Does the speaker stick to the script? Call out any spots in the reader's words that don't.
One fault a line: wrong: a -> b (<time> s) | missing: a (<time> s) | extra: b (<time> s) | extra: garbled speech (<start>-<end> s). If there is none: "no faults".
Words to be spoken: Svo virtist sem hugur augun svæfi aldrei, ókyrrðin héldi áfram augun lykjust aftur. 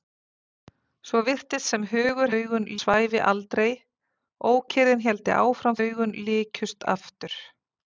no faults